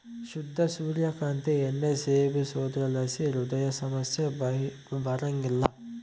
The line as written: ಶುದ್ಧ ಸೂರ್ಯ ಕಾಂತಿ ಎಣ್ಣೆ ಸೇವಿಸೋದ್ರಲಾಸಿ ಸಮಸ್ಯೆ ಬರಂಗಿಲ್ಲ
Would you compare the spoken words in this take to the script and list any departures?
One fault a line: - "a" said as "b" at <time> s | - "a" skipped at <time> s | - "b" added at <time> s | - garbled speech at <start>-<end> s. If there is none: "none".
- "ಹೃದಯ" added at 3.3 s